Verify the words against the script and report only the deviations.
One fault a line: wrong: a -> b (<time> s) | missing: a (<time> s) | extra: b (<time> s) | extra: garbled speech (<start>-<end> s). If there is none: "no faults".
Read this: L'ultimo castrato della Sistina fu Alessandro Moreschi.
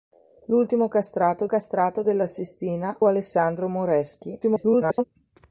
extra: castrato (1.5 s)
missing: fu (3.0 s)
extra: garbled speech (4.4-5.0 s)